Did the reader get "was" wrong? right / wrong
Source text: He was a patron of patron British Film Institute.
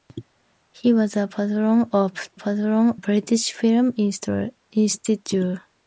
right